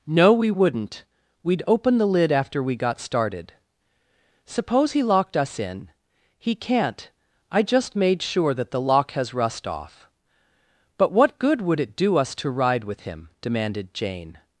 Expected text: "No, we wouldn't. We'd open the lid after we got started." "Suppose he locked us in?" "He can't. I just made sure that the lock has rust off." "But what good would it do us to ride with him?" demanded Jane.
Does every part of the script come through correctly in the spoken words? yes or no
yes